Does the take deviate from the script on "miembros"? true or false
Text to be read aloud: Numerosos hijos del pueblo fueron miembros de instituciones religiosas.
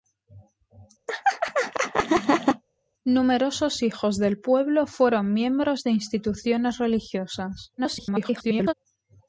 false